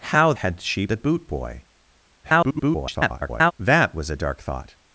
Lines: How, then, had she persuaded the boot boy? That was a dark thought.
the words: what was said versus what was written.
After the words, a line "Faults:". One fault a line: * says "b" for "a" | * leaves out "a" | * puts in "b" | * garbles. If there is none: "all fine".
How, had she the boot boy? [garbled] That was a dark thought.
Faults:
* leaves out "then"
* leaves out "persuaded"
* garbles